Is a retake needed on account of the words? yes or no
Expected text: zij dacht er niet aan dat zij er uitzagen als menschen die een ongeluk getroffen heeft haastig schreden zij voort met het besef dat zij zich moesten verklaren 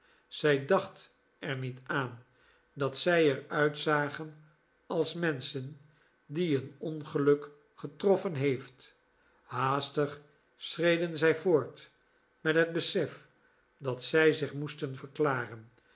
no